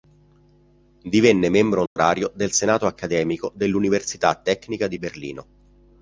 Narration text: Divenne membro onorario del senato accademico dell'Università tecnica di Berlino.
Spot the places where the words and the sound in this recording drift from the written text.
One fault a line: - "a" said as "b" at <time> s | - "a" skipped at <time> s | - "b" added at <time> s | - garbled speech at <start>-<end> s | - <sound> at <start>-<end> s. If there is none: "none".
- dropout at 1.9-2.0 s